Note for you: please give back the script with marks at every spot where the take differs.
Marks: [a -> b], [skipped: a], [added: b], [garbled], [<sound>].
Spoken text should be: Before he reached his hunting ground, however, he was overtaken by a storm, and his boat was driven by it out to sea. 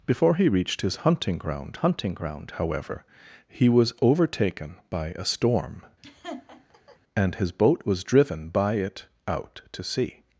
Before he reached his hunting ground, [added: hunting ground] however, he was overtaken by a storm, [laugh] and his boat was driven by it out to sea.